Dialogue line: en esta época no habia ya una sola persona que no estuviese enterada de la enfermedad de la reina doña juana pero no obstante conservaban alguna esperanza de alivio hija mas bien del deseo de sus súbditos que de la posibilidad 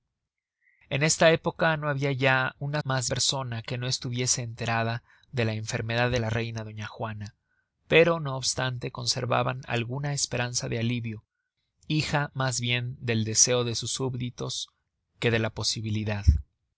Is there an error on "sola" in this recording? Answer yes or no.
yes